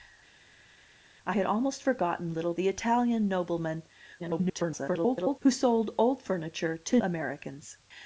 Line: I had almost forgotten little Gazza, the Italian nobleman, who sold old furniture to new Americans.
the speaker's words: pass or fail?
fail